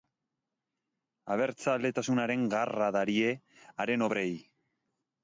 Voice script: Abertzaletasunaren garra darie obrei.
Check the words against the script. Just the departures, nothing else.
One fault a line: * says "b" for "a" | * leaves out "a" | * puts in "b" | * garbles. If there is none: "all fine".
* puts in "haren"